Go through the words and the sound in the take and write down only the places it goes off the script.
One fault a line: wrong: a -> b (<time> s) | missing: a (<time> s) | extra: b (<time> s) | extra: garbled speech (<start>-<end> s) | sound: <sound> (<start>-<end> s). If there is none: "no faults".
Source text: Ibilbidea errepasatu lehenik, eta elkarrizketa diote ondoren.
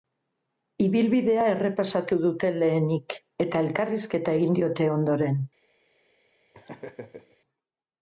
extra: dute (2.2 s)
extra: egin (4.4 s)
sound: laugh (6.5-7.4 s)